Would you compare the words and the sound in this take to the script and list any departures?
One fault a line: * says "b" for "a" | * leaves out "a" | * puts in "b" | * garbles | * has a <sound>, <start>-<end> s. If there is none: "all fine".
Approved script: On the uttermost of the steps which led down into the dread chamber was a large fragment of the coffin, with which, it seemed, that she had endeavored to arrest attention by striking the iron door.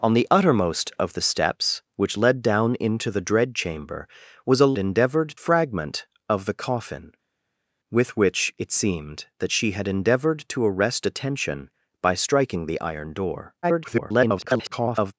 * says "endeavored" for "large"
* garbles